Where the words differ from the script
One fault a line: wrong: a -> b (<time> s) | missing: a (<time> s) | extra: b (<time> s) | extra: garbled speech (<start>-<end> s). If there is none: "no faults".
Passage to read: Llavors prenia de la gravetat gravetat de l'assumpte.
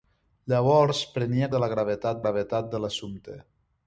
no faults